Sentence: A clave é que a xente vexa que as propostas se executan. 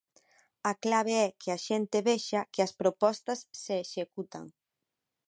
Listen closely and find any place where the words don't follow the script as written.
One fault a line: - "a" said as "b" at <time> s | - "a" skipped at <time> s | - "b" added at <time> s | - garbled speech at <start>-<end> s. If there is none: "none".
none